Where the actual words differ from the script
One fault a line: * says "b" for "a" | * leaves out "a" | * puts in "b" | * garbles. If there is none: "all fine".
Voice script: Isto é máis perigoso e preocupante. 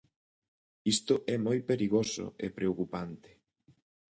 * says "moi" for "máis"